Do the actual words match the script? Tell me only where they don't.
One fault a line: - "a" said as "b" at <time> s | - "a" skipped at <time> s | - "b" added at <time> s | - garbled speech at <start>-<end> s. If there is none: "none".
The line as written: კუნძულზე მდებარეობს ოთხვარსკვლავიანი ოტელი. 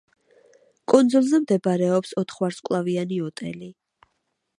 none